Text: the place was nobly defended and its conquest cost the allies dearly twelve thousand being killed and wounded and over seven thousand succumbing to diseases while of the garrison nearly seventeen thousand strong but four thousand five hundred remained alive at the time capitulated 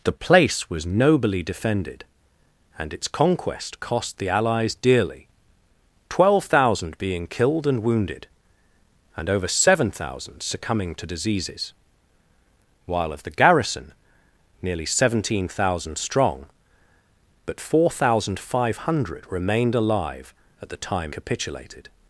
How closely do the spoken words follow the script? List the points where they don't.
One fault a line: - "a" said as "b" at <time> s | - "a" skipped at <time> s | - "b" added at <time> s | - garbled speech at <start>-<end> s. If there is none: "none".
none